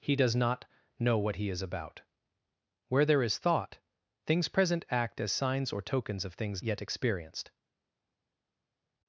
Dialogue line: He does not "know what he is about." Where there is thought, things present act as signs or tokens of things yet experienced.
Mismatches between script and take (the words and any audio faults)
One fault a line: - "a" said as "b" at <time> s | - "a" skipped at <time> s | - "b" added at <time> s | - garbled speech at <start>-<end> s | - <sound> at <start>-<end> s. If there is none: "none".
none